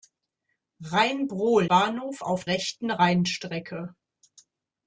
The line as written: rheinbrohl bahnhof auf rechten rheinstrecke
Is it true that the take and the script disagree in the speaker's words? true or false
false